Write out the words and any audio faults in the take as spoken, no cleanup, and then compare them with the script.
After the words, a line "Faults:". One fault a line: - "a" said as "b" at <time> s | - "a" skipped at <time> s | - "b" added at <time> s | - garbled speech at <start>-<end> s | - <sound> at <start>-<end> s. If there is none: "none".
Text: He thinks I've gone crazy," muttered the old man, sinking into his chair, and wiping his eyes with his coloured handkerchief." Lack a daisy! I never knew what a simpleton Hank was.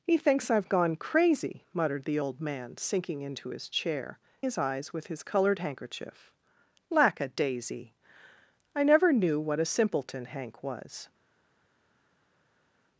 He thinks I've gone crazy," muttered the old man, sinking into his chair, his eyes with his coloured handkerchief." Lack a daisy! I never knew what a simpleton Hank was.
Faults:
- "and wiping" skipped at 4.2 s